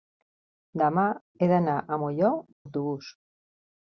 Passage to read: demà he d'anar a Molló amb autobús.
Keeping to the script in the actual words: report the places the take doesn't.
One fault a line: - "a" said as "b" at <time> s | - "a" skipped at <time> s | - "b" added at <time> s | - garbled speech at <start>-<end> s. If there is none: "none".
- "amb" skipped at 2.3 s